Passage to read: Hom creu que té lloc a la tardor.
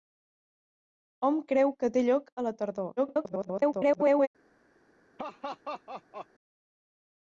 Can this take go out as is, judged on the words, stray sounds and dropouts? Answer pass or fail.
fail